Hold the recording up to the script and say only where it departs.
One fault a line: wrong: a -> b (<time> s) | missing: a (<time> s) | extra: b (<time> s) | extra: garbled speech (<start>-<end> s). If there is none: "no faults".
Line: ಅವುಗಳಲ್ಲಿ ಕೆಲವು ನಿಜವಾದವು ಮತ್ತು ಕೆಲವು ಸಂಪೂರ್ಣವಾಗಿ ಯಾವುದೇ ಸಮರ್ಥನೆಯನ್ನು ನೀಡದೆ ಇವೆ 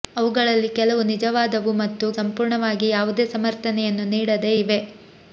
missing: ಕೆಲವು (2.1 s)